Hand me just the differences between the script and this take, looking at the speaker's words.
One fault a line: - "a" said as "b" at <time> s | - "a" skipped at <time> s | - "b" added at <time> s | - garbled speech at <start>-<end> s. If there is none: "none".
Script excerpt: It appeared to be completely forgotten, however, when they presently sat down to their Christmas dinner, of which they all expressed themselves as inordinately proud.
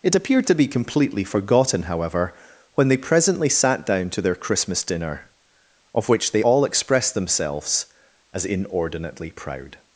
none